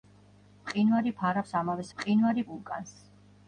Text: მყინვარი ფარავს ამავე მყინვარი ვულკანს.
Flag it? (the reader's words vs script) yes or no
no